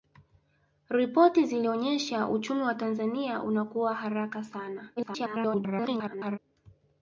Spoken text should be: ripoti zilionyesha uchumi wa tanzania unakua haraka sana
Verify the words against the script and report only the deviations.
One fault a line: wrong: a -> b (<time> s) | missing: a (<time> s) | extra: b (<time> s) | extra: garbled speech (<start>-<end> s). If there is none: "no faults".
extra: garbled speech (5.0-6.4 s)